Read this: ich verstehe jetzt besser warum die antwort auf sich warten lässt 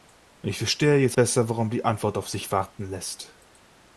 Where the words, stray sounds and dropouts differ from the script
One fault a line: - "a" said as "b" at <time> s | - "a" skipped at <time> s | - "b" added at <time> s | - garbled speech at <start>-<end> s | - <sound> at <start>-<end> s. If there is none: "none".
none